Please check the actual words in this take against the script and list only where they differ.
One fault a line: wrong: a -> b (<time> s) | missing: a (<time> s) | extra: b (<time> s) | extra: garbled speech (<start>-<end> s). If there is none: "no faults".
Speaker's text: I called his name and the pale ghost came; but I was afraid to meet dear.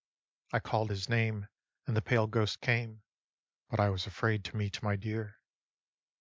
extra: my (4.8 s)